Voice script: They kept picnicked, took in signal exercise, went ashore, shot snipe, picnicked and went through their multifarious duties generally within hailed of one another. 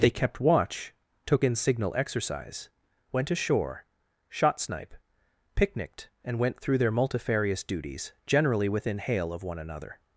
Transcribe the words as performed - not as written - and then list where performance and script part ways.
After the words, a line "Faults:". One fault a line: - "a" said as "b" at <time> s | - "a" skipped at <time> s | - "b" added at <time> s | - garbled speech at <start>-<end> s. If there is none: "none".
They kept watch, took in signal exercise, went ashore, shot snipe, picnicked and went through their multifarious duties generally within hail of one another.
Faults:
- "picnicked" said as "watch" at 0.4 s
- "hailed" said as "hail" at 9.0 s